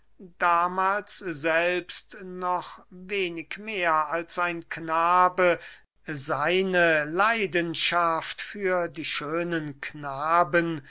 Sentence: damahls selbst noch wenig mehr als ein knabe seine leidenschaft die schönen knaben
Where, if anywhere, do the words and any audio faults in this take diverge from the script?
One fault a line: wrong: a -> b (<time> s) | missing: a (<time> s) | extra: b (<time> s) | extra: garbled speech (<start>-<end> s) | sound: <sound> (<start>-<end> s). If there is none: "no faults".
extra: für (8.4 s)